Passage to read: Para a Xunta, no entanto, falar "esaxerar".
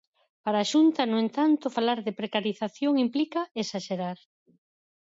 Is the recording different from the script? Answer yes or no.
yes